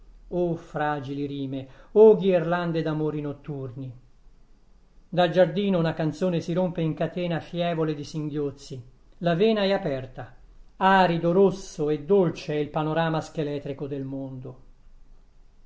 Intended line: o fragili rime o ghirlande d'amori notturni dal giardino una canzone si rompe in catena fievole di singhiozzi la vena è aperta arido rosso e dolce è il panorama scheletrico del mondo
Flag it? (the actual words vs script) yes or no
no